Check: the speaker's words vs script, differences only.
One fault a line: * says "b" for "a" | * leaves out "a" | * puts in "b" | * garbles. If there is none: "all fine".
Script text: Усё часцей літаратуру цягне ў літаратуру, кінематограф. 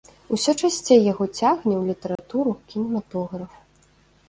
* says "яго" for "літаратуру"